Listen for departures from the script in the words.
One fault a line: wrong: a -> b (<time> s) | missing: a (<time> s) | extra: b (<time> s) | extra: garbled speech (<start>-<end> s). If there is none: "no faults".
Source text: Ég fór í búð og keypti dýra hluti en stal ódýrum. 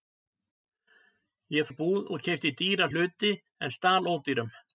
missing: fór (1.7 s)